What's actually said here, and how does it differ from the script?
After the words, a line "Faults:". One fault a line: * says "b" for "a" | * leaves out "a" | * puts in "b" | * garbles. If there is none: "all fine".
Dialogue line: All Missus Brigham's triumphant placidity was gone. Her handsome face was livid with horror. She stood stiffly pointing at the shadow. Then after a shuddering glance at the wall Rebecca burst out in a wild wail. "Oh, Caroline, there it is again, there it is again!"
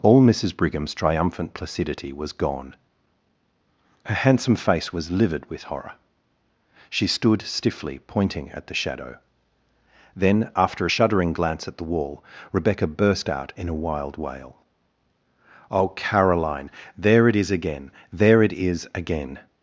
All Missus Brigham's triumphant placidity was gone. Her handsome face was livid with horror. She stood stiffly pointing at the shadow. Then after a shuddering glance at the wall Rebecca burst out in a wild wail. "Oh, Caroline, there it is again, there it is again!"
Faults:
all fine